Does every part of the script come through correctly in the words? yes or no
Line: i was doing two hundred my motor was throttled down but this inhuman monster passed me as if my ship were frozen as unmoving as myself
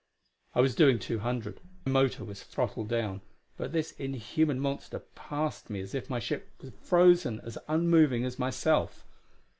no